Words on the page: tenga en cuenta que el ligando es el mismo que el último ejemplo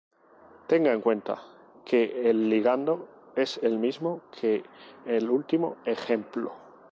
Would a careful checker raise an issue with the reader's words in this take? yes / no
no